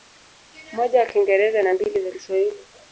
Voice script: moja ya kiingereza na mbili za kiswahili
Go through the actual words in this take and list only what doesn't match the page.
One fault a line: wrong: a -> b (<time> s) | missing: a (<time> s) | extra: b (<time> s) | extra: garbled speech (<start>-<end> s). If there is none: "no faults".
no faults